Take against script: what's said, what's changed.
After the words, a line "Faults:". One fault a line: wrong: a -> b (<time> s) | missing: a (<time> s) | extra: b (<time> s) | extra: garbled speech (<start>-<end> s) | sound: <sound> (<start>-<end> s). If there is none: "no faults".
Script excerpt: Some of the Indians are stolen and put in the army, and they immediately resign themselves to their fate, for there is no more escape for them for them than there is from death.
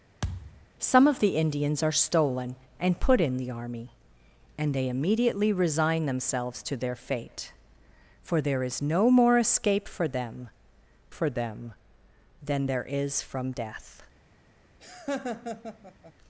Some of the Indians are stolen and put in the army, and they immediately resign themselves to their fate, for there is no more escape for them for them than there is from death.
Faults:
sound: thud (0.2-0.7 s)
sound: laugh (14.8-16.1 s)